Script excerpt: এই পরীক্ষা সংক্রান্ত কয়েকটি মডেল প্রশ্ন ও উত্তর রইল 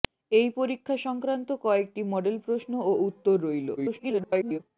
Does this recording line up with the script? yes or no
no